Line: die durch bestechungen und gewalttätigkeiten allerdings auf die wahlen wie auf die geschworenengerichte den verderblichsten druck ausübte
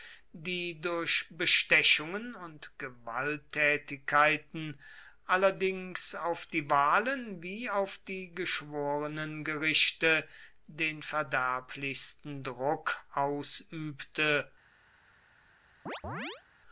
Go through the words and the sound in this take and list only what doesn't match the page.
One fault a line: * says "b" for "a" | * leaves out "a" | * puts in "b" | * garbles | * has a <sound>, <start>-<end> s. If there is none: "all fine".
* has a chirp, 15.9-16.4 s